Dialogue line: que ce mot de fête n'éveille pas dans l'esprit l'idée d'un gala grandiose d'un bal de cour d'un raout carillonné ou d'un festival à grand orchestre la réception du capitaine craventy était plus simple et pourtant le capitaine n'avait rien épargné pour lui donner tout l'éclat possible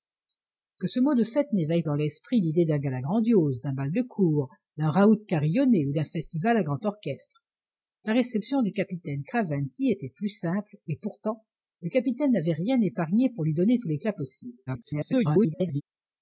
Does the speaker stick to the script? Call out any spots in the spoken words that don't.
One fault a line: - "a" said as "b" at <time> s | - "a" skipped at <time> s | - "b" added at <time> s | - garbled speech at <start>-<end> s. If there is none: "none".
- "pas" skipped at 1.8 s
- garbled speech at 14.7-15.8 s